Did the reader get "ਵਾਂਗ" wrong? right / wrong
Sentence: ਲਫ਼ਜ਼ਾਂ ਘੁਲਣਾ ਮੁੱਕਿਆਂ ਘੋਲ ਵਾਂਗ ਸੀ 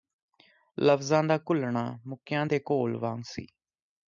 right